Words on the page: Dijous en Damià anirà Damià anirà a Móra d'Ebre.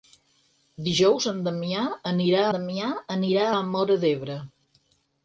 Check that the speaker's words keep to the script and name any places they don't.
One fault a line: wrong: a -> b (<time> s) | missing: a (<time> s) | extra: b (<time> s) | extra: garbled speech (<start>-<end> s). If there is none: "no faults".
no faults